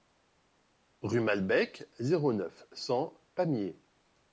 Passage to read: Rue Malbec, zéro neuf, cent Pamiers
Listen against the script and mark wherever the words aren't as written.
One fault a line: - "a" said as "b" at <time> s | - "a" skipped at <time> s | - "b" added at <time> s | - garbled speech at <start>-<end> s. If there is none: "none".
none